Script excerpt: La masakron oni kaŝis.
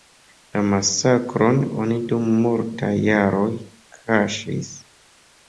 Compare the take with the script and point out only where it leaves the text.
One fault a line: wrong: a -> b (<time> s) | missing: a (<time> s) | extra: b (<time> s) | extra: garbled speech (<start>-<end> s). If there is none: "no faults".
extra: dum multaj jaroj (2.1 s)